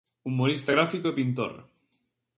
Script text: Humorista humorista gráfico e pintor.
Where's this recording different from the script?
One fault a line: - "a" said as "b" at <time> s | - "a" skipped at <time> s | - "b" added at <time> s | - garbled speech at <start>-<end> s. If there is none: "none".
- "humorista" skipped at 0.7 s